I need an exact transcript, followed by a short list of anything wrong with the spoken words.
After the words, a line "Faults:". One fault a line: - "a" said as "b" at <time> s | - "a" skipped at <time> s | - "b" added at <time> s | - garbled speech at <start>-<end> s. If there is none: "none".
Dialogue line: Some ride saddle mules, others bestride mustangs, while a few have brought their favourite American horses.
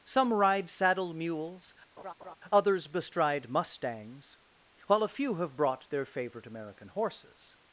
Some ride saddle mules, others bestride mustangs, while a few have brought their favourite American horses.
Faults:
none